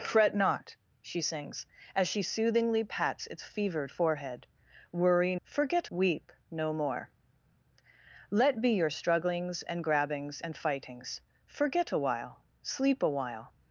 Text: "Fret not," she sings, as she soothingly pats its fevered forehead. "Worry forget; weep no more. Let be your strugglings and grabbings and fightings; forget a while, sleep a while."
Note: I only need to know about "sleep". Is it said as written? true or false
true